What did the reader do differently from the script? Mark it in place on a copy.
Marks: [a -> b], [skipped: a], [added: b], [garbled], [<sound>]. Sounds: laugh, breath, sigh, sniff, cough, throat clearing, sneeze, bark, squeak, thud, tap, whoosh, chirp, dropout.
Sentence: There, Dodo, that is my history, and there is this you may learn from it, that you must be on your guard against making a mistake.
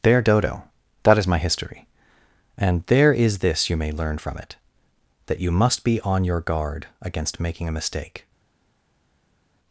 There, Dodo, that is my history, and there is this you may learn from it, that you must be on your guard against making a mistake.